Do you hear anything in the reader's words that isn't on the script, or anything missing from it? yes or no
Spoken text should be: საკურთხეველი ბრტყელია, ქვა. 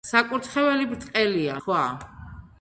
no